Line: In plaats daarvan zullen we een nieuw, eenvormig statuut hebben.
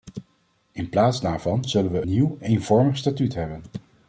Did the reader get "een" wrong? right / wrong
wrong